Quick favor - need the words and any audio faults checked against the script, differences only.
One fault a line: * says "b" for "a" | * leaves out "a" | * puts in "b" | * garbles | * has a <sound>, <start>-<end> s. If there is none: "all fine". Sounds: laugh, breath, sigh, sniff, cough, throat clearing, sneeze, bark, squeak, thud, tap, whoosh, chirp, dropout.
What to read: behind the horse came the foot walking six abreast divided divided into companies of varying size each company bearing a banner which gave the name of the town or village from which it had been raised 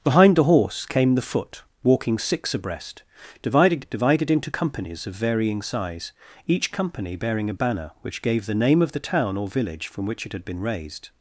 all fine